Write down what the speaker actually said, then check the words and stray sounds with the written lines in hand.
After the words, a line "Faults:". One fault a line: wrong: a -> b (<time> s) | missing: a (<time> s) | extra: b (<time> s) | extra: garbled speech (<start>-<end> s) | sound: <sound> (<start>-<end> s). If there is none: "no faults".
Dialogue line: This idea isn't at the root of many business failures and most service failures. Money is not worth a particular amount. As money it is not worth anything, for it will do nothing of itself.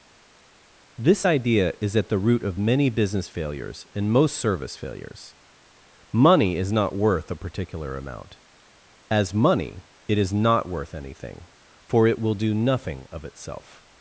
This idea is at the root of many business failures and most service failures. Money is not worth a particular amount. As money it is not worth anything, for it will do nothing of itself.
Faults:
wrong: isn't -> is (1.8 s)